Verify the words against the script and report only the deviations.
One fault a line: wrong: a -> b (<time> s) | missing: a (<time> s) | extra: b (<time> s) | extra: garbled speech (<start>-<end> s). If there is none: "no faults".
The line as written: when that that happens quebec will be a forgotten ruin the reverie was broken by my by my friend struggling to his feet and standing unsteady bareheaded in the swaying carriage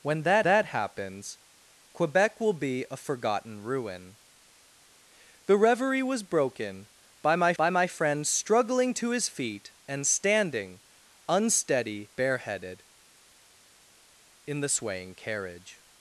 no faults